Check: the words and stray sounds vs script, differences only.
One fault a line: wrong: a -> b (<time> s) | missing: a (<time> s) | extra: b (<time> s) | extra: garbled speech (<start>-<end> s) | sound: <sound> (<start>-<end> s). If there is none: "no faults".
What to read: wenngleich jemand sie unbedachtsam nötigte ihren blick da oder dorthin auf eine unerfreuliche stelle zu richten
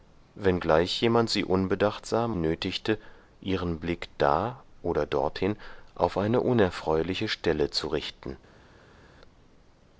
no faults